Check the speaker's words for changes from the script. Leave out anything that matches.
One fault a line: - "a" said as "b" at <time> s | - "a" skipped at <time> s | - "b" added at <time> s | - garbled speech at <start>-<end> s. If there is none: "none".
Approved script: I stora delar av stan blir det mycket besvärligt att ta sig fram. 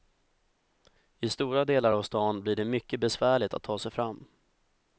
none